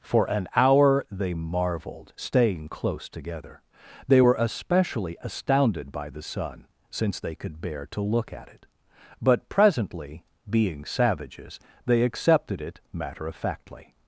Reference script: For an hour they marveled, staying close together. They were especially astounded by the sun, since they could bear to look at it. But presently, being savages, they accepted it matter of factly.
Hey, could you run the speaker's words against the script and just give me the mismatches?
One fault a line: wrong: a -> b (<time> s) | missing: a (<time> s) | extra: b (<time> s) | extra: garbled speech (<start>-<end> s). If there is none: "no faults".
no faults